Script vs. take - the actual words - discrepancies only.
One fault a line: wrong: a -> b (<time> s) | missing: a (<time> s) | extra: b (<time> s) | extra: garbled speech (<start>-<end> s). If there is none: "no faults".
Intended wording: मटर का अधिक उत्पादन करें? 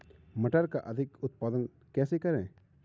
extra: कैसे (1.9 s)